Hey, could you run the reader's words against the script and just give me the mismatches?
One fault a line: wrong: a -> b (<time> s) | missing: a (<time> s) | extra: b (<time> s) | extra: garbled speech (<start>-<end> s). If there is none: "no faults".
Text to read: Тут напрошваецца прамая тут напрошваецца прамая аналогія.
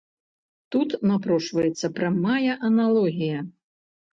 missing: тут напрошваецца прамая (2.5 s)